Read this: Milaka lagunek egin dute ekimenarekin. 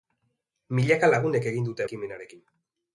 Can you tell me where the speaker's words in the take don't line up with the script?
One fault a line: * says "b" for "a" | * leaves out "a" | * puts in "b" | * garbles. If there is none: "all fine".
all fine